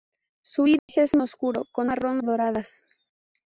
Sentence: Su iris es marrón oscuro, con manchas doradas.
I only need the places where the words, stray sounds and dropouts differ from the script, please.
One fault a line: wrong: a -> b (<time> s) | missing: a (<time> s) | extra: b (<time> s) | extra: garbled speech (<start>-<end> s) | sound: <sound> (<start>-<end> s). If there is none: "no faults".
sound: dropout (0.8-0.9 s)
missing: marrón (1.2 s)
wrong: manchas -> marrón (1.8 s)